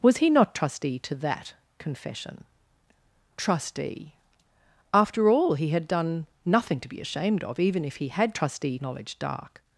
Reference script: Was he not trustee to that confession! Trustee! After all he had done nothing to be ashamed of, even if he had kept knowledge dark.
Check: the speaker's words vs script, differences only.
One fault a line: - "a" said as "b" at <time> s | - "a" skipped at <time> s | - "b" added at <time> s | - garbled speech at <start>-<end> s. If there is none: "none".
- "kept" said as "trustee" at 8.3 s